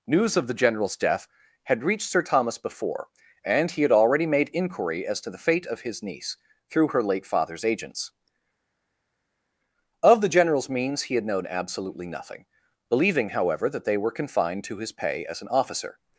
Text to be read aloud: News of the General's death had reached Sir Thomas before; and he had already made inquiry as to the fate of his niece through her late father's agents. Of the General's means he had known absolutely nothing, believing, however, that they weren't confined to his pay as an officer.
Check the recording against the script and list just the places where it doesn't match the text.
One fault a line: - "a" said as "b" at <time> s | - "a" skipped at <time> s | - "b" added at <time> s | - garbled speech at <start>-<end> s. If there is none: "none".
- "weren't" said as "were" at 14.0 s